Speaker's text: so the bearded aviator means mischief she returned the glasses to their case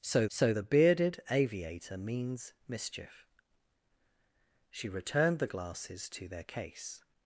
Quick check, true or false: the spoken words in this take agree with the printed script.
false